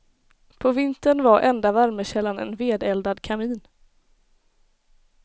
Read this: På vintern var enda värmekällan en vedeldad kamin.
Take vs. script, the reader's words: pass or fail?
pass